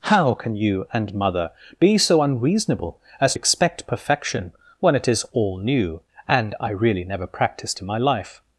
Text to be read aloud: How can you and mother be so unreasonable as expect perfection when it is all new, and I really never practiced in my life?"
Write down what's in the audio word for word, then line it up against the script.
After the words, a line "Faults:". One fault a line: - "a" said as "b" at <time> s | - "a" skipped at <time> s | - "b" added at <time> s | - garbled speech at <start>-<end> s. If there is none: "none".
How can you and mother be so unreasonable as expect perfection when it is all new, and I really never practiced in my life?"
Faults:
none